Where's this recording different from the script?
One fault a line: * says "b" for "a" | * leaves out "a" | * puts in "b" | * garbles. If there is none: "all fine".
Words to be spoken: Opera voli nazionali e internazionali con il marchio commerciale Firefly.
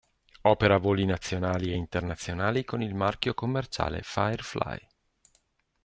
all fine